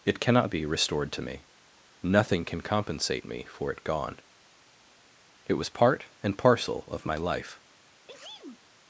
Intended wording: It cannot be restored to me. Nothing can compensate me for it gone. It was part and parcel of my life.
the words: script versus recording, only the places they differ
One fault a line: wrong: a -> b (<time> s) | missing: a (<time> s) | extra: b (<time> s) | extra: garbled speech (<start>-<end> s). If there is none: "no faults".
no faults